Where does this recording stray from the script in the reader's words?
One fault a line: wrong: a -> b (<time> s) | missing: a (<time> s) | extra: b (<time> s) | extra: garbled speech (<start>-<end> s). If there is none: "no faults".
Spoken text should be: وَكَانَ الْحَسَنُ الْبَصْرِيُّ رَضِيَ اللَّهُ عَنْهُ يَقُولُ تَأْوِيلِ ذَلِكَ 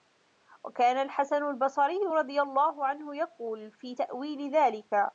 extra: فِي (3.7 s)